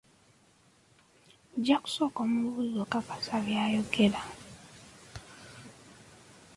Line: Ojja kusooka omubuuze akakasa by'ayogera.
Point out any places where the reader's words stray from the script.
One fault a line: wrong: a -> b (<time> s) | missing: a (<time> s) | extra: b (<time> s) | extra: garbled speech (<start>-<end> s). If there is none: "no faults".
no faults